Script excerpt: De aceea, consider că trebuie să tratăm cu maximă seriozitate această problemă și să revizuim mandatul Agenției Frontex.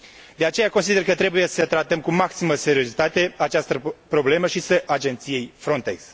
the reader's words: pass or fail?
fail